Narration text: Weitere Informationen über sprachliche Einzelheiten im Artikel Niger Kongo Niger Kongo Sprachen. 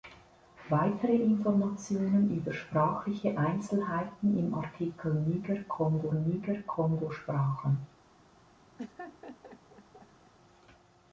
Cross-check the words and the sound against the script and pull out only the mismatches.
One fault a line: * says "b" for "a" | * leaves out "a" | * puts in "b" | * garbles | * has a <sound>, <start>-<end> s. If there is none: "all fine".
* has a laugh, 8.8-10.3 s